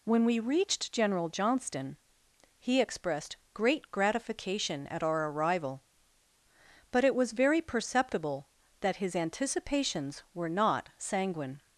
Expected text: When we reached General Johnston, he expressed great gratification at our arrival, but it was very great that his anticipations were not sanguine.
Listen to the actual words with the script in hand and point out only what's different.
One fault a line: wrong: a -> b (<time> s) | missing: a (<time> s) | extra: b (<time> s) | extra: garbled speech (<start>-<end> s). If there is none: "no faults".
wrong: great -> perceptible (7.6 s)